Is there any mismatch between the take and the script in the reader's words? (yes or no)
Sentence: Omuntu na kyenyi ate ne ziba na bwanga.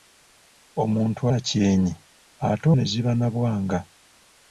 no